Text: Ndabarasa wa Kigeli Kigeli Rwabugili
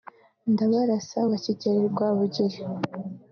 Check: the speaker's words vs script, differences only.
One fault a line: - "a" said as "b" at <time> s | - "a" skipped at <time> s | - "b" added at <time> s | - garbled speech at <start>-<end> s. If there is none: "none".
- "Kigeli" skipped at 1.8 s